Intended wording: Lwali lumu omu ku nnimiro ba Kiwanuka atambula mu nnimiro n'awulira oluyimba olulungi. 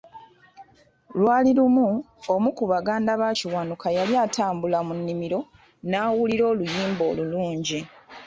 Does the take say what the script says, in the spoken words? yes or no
no